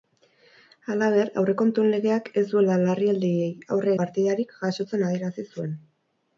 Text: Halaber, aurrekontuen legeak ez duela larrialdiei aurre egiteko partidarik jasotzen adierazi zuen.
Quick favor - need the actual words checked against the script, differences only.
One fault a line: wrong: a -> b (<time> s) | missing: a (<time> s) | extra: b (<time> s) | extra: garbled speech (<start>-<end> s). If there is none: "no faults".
missing: egiteko (3.9 s)